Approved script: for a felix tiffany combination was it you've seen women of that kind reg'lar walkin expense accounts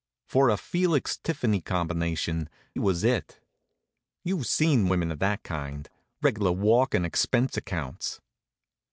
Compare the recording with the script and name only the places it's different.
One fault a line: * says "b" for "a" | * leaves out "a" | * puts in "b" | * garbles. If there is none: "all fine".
all fine